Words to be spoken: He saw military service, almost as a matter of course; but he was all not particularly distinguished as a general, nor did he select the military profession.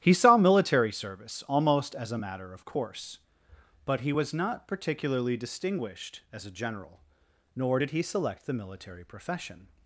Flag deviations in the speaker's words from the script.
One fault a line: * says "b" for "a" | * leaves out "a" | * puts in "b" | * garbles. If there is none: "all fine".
* leaves out "all"